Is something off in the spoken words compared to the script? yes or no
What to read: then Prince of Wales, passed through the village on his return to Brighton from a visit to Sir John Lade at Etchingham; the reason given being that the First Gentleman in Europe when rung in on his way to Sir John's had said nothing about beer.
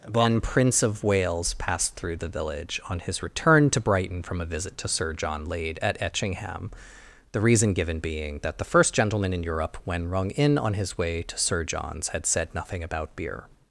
yes